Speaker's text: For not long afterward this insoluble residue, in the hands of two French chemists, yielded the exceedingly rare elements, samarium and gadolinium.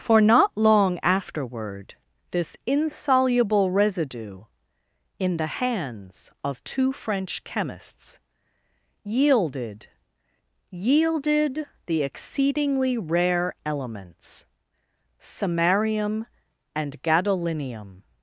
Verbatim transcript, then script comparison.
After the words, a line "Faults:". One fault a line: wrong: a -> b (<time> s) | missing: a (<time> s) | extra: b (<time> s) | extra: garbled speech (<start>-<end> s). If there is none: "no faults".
For not long afterward this insoluble residue, in the hands of two French chemists, yielded yielded the exceedingly rare elements, samarium and gadolinium.
Faults:
extra: yielded (10.7 s)